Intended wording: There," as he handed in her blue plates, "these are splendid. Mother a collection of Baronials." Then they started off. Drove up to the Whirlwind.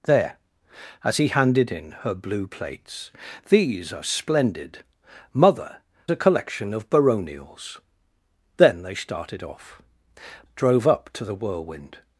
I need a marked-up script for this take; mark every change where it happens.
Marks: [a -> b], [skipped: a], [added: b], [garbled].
There," as he handed in her blue plates, "these are splendid. Mother a collection of Baronials." Then they started off. Drove up to the Whirlwind.